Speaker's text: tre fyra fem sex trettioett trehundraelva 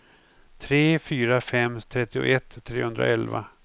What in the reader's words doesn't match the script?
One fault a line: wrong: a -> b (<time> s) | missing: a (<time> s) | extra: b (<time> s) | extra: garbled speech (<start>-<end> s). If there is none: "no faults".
missing: sex (1.8 s)